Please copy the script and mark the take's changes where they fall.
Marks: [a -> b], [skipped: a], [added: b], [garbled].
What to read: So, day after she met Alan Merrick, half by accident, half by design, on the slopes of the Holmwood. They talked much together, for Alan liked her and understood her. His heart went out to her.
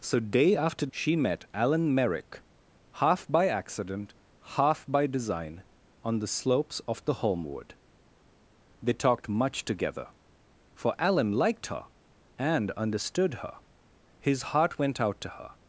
So, day after she met Alan Merrick, half by accident, half by design, on the slopes of the Holmwood. They talked much together, for Alan liked her and understood her. His heart went out to her.